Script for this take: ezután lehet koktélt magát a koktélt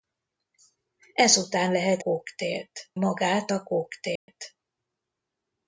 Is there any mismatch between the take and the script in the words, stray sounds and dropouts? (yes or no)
yes